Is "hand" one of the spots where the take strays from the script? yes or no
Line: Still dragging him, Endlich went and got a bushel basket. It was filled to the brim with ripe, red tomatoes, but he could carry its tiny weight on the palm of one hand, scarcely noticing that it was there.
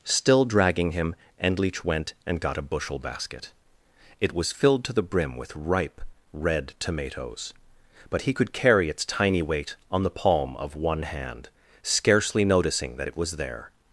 no